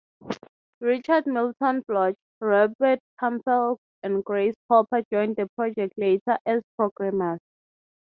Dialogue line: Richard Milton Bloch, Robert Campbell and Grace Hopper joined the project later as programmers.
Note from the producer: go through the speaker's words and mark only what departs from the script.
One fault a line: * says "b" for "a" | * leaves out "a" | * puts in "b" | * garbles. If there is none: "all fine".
all fine